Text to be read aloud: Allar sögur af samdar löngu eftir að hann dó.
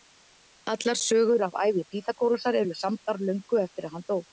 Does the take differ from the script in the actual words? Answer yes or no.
yes